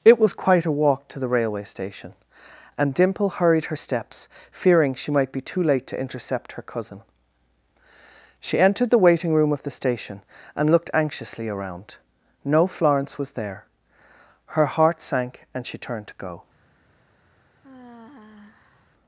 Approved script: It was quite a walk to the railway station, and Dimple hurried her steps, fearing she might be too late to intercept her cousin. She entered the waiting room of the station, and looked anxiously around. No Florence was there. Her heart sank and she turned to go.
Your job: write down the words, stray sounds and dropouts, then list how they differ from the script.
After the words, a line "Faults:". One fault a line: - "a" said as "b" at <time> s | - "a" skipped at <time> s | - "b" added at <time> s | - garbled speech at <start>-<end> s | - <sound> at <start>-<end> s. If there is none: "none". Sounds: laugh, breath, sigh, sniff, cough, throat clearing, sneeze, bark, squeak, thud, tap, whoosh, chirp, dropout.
It was quite a walk to the railway station, and Dimple hurried her steps, fearing she might be too late to intercept her cousin. She entered the waiting room of the station, and looked anxiously around. No Florence was there. Her heart sank and she turned to go.
Faults:
- sigh at 17.6-18.9 s